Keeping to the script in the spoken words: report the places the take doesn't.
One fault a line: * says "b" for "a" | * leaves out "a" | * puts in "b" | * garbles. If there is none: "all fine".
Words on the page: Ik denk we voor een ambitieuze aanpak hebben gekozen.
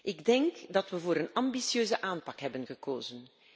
* puts in "dat"